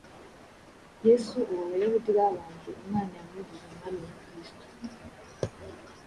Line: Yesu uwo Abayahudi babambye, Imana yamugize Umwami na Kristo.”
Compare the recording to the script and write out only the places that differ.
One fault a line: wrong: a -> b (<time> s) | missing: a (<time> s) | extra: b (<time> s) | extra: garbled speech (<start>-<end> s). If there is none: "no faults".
no faults